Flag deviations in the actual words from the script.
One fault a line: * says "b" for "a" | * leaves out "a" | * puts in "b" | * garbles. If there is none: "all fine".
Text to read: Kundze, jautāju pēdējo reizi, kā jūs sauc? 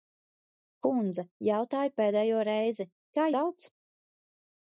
* leaves out "jūs"